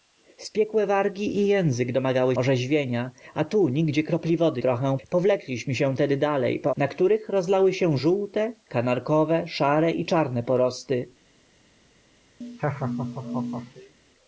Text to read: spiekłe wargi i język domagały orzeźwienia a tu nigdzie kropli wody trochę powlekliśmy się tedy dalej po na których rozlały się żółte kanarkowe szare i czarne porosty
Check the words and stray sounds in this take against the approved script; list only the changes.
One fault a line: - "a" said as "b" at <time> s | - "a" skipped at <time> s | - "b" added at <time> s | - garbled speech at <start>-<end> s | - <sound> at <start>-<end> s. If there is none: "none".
- laugh at 12.4-13.9 s